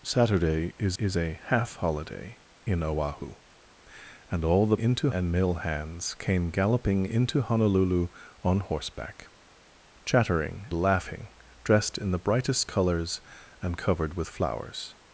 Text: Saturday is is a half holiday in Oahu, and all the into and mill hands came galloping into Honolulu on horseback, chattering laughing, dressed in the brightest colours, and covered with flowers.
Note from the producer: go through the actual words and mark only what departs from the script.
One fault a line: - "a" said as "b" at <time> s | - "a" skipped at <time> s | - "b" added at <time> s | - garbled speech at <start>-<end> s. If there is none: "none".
none